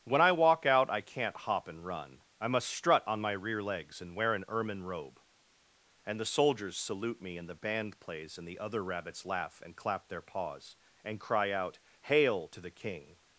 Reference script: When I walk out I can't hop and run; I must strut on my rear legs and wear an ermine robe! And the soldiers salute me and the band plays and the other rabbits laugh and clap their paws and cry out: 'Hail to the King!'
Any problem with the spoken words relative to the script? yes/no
no